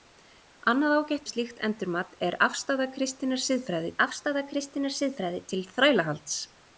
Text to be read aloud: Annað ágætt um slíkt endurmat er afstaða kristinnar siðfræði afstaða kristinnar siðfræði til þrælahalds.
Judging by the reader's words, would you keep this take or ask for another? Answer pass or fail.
pass